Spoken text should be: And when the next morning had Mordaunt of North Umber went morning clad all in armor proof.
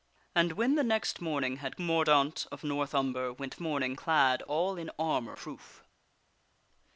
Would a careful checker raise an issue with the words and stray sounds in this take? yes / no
no